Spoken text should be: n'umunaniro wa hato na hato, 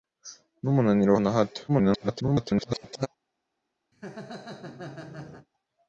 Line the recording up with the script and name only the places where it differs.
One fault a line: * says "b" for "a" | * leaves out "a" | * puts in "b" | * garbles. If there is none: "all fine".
* leaves out "hato"
* garbles